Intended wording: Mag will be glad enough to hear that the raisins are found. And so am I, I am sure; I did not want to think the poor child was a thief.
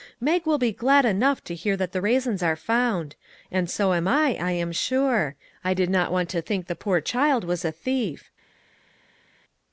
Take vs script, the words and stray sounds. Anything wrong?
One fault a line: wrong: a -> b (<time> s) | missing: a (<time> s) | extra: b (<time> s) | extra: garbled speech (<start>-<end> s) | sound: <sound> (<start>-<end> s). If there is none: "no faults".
no faults